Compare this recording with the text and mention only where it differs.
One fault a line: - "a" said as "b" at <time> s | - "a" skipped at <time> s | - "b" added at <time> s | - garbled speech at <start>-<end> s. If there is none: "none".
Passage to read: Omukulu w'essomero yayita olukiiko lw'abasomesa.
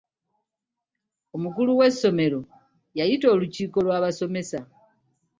none